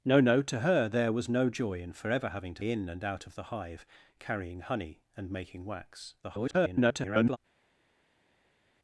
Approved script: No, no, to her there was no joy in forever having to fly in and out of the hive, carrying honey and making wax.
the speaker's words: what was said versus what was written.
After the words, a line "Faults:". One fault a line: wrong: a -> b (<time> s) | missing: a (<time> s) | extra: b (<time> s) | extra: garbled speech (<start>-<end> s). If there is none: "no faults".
No, no, to her there was no joy in forever having to in and out of the hive, carrying honey and making wax. [garbled]
Faults:
missing: fly (2.6 s)
extra: garbled speech (6.2-7.4 s)